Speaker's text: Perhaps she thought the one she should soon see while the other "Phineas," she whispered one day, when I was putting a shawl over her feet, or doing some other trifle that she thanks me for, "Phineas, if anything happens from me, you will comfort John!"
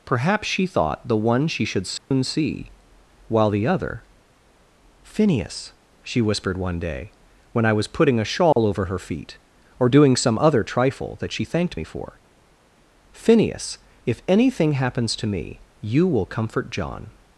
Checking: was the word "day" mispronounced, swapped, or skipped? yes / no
no